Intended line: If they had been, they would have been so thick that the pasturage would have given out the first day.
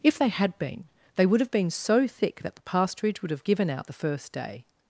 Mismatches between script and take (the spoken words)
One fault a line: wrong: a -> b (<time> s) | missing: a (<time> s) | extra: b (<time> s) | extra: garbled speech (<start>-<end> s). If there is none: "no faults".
no faults